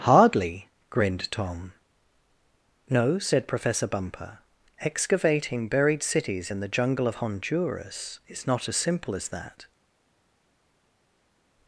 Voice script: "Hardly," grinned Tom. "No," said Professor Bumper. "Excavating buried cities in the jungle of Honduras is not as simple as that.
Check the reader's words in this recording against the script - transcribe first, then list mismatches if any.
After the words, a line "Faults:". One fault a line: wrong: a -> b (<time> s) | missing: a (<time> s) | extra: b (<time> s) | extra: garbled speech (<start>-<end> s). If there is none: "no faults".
"Hardly," grinned Tom. "No," said Professor Bumper. "Excavating buried cities in the jungle of Honduras is not as simple as that.
Faults:
no faults